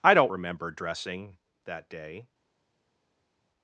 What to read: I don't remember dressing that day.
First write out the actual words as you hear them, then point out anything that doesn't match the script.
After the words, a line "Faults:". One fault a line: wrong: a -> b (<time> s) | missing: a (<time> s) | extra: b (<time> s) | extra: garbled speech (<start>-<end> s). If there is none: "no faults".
I don't remember dressing that day.
Faults:
no faults